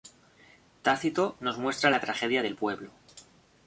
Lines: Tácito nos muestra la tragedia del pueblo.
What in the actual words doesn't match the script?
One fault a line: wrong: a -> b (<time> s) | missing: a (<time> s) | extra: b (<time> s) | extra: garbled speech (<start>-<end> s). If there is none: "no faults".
no faults